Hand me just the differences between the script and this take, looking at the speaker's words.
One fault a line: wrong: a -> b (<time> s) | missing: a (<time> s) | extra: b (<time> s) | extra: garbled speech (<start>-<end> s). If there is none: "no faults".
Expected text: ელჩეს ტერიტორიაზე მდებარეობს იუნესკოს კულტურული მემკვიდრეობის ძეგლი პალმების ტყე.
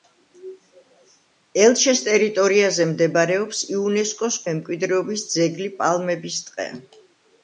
missing: კულტურული (4.4 s)